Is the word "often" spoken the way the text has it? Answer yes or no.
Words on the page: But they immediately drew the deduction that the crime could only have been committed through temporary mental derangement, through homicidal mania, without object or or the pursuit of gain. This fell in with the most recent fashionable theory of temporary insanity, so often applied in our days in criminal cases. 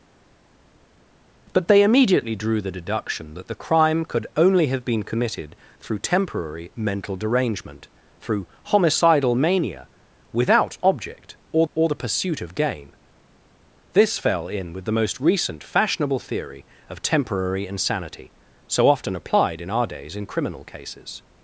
yes